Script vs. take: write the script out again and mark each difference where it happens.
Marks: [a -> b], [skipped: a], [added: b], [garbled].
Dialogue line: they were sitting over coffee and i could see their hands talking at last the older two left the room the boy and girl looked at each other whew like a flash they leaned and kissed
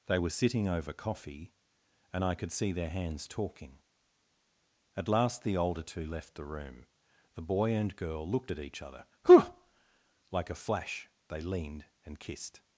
they were sitting over coffee and i could see their hands talking at last the older two left the room the boy and girl looked at each other whew like a flash they leaned and kissed